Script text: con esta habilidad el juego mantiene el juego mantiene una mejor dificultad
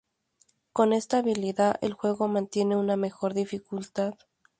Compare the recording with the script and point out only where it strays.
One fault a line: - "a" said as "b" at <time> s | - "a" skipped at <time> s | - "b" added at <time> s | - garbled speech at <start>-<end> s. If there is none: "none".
- "el juego mantiene" skipped at 2.8 s